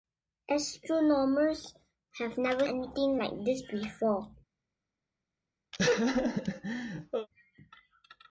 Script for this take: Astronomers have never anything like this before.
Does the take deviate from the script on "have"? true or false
false